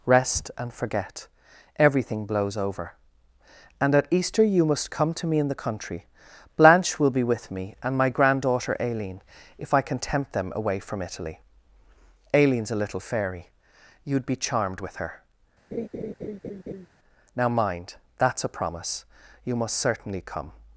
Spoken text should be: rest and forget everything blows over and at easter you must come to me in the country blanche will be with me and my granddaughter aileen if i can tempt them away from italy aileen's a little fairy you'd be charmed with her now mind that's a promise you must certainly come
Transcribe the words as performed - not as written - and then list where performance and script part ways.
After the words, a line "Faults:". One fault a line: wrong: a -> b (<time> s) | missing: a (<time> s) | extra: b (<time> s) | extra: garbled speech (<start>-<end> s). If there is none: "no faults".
rest and forget everything blows over and at easter you must come to me in the country blanche will be with me and my granddaughter aileen if i can tempt them away from italy aileen's a little fairy you'd be charmed with her now mind that's a promise you must certainly come
Faults:
no faults